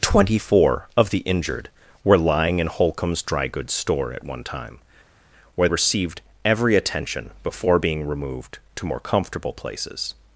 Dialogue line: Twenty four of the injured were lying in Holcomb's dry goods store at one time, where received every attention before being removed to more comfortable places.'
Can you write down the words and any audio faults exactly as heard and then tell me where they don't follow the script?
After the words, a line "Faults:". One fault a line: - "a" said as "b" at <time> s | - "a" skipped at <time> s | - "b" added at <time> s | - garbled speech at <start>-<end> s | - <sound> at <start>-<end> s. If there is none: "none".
Twenty four of the injured were lying in Holcomb's dry goods store at one time, where received every attention before being removed to more comfortable places.'
Faults:
none